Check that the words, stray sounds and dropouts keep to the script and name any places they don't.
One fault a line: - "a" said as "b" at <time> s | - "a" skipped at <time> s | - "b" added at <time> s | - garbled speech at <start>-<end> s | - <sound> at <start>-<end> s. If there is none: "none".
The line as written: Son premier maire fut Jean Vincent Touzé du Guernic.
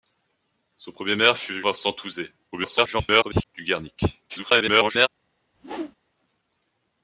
- "Jean" skipped at 1.6 s
- garbled speech at 2.5-3.5 s
- garbled speech at 4.3-5.1 s
- whoosh at 5.5-6.0 s